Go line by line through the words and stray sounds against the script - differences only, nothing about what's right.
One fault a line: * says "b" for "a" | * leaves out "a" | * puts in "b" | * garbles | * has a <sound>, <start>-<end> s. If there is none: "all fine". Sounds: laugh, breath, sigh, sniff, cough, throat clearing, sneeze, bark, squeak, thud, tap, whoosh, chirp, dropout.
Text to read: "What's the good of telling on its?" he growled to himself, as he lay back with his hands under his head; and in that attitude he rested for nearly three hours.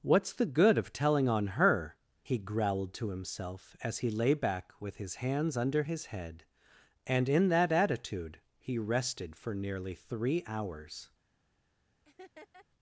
* says "her" for "its"
* has a laugh, 12.0-12.7 s